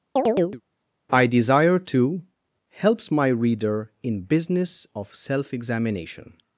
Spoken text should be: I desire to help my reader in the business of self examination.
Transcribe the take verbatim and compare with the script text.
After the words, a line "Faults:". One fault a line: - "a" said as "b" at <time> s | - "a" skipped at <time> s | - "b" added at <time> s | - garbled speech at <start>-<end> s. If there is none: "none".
I desire to helps my reader in business of self examination.
Faults:
- "help" said as "helps" at 2.7 s
- "the" skipped at 4.2 s